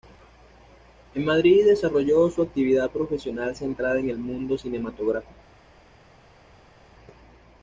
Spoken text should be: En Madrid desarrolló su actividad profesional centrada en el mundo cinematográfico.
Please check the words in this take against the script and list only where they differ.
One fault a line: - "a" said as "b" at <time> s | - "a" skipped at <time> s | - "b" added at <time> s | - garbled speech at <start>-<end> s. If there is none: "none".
none